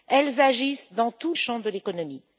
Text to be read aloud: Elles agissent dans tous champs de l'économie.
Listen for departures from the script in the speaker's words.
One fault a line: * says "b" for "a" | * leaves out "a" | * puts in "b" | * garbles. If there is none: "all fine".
all fine